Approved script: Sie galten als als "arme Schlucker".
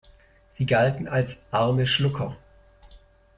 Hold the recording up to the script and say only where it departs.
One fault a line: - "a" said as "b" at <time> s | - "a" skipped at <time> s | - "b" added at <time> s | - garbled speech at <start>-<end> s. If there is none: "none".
- "als" skipped at 1.4 s